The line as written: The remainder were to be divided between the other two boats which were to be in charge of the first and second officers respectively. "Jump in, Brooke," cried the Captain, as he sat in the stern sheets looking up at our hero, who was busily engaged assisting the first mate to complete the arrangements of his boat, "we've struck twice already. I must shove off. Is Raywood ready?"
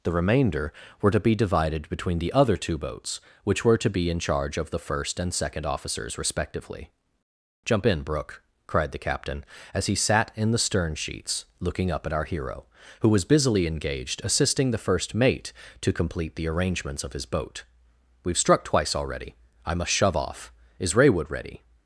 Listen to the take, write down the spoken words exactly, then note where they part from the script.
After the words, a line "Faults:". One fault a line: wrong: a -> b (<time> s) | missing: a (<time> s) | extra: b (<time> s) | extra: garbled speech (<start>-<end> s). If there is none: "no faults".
The remainder were to be divided between the other two boats which were to be in charge of the first and second officers respectively. "Jump in, Brooke," cried the Captain, as he sat in the stern sheets looking up at our hero, who was busily engaged assisting the first mate to complete the arrangements of his boat, "we've struck twice already. I must shove off. Is Raywood ready?"
Faults:
no faults